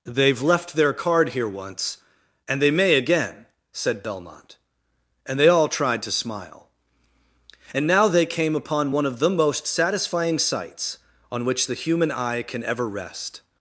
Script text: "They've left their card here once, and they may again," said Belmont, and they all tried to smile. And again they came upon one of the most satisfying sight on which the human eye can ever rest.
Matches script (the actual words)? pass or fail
fail